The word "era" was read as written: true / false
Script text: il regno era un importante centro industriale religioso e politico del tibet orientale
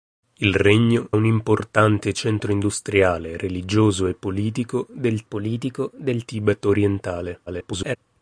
false